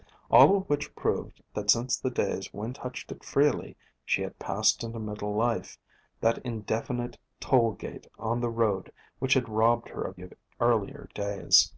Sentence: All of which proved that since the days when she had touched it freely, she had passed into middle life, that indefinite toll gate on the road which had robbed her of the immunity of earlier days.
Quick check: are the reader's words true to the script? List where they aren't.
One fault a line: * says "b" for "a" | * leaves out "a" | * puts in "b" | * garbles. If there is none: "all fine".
* leaves out "she had"
* leaves out "the immunity"